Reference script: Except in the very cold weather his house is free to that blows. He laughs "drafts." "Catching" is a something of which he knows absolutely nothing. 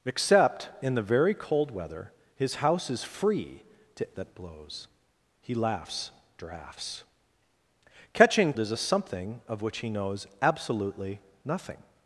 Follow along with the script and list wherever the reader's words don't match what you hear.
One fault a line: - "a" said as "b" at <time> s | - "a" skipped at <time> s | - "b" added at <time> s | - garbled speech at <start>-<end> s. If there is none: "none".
none